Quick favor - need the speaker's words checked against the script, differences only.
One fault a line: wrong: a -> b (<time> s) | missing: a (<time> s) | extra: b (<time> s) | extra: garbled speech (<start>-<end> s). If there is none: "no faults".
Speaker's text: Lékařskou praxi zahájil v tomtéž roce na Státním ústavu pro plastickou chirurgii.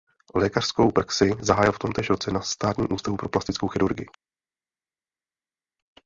no faults